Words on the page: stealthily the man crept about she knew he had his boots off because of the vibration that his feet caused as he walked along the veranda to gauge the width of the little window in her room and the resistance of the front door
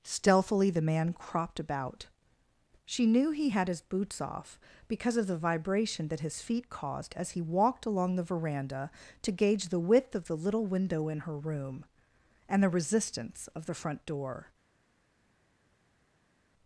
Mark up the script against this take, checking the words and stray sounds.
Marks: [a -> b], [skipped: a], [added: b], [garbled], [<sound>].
stealthily the man [crept -> cropped] about she knew he had his boots off because of the vibration that his feet caused as he walked along the veranda to gauge the width of the little window in her room and the resistance of the front door